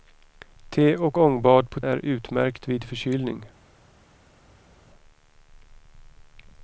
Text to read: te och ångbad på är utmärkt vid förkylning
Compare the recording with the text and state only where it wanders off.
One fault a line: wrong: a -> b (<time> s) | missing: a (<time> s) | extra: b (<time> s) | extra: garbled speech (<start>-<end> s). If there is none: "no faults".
no faults